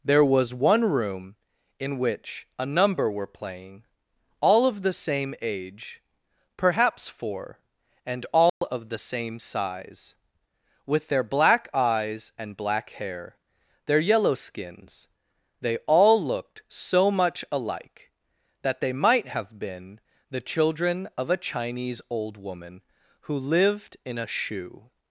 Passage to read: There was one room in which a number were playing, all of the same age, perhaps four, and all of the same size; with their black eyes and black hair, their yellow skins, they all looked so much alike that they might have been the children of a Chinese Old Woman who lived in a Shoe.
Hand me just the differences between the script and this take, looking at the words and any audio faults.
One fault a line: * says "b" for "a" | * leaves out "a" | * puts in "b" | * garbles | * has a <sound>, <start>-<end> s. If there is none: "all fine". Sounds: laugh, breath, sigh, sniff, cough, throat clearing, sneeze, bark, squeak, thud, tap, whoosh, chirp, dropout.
* has a dropout, 8.5-8.6 s